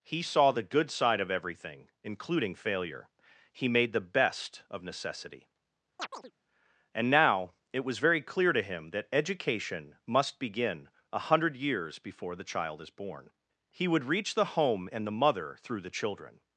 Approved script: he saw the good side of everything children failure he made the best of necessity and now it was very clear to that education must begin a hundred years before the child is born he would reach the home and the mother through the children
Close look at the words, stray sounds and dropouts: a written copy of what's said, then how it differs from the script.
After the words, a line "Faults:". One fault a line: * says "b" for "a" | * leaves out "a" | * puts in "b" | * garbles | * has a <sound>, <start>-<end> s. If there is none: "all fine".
he saw the good side of everything including failure he made the best of necessity and now it was very clear to him that education must begin a hundred years before the child is born he would reach the home and the mother through the children
Faults:
* says "including" for "children"
* has a chirp, 6.0-6.3 s
* puts in "him"